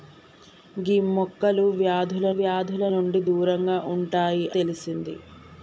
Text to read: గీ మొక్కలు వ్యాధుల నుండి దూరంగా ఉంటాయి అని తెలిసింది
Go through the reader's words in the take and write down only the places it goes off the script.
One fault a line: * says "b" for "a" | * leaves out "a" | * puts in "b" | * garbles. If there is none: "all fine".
* puts in "వ్యాధుల"
* leaves out "అని"